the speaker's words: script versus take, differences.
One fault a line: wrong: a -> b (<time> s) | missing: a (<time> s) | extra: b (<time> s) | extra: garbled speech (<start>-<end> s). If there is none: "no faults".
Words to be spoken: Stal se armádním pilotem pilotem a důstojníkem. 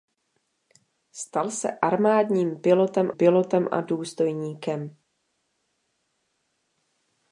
no faults